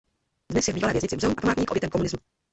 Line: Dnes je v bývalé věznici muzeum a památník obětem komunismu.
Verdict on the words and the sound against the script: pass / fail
pass